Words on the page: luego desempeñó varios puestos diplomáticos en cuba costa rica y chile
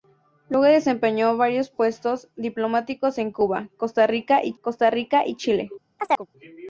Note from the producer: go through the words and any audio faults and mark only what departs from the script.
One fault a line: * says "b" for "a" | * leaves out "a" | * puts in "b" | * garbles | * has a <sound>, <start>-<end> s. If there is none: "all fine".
* puts in "costa rica y"
* has a chirp, 6.0-6.3 s